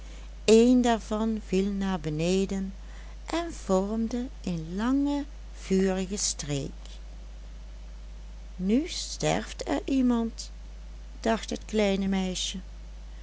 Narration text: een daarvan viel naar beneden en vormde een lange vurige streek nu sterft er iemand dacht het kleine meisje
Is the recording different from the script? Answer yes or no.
no